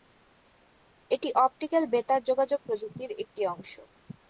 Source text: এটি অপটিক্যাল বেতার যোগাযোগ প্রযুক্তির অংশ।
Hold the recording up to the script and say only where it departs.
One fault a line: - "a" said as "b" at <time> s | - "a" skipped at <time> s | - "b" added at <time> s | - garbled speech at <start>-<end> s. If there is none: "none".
- "একটি" added at 3.2 s